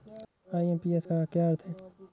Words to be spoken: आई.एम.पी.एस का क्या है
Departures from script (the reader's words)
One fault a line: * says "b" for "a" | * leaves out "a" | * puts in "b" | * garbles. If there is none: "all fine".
* puts in "अर्थ"